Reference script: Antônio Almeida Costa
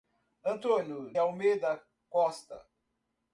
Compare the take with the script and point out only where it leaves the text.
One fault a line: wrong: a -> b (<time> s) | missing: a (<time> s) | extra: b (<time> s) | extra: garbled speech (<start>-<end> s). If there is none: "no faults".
no faults